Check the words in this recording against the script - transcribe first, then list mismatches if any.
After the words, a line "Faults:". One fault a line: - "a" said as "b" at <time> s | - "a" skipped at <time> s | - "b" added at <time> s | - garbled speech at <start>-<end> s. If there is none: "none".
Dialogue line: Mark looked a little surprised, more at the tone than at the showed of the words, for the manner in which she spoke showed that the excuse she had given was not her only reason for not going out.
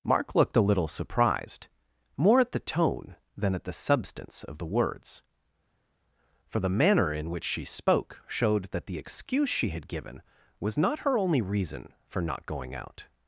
Mark looked a little surprised, more at the tone than at the substance of the words, for the manner in which she spoke showed that the excuse she had given was not her only reason for not going out.
Faults:
- "showed" said as "substance" at 3.8 s